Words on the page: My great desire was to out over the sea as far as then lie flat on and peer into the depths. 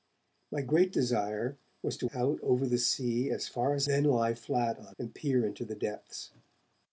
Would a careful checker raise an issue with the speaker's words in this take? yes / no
no